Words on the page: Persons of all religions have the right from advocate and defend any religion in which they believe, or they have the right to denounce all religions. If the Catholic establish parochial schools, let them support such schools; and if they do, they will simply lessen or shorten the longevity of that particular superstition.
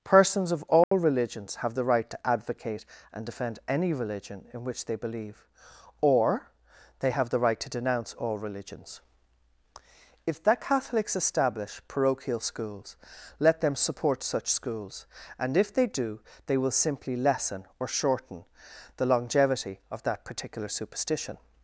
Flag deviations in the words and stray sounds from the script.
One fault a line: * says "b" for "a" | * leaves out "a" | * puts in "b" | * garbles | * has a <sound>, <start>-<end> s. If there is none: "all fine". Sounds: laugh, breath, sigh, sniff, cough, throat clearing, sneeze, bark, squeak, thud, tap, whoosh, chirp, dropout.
* has a dropout, 0.8-0.9 s
* says "to" for "from"
* says "Catholics" for "Catholic"